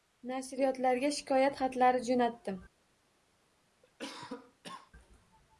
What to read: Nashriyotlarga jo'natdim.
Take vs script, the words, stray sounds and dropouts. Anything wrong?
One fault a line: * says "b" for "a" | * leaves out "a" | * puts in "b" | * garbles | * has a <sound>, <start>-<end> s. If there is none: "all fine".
* puts in "shikoyat xatlari"
* has a cough, 3.8-4.9 s